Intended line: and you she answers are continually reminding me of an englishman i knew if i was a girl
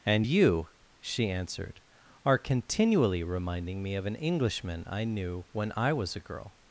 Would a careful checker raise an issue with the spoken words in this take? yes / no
yes